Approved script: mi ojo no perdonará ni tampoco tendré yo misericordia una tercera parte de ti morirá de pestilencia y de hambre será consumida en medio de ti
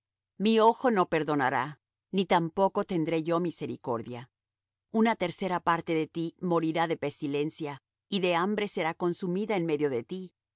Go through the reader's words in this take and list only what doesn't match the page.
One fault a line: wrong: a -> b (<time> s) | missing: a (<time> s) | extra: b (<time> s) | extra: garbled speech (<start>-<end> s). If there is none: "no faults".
no faults